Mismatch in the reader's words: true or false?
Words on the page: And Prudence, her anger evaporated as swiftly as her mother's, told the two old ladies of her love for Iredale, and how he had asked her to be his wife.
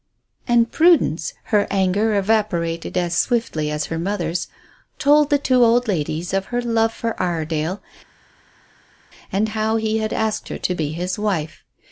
false